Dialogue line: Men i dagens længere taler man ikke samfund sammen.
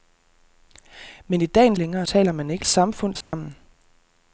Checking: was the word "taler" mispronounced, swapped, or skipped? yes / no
no